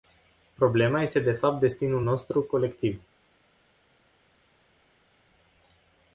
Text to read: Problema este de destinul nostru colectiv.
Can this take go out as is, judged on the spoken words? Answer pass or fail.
fail